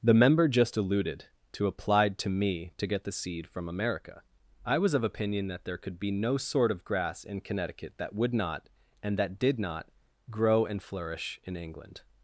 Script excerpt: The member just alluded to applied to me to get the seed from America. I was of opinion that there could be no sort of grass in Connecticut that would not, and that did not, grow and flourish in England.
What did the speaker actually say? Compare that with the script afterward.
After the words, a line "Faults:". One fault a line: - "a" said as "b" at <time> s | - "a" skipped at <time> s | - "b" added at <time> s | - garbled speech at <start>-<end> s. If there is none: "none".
The member just alluded to applied to me to get the seed from America. I was of opinion that there could be no sort of grass in Connecticut that would not, and that did not, grow and flourish in England.
Faults:
none